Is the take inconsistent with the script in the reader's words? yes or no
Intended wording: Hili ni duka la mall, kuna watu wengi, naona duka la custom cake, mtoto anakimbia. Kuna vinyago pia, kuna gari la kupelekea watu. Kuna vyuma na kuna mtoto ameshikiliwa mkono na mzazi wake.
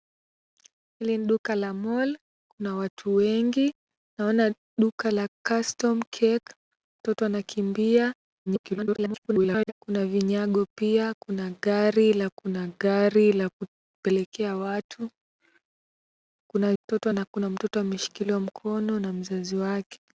yes